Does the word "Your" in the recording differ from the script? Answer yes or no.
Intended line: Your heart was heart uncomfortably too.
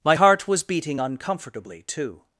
yes